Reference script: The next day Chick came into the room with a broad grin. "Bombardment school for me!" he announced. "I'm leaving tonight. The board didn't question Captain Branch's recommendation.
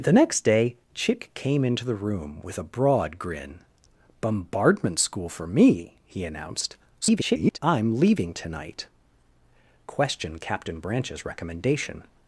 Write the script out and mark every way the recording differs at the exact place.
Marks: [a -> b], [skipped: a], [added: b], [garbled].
The next day Chick came into the room with a broad grin. "Bombardment school for me!" he announced. [garbled] "I'm leaving tonight. [skipped: The board didn't] question Captain Branch's recommendation.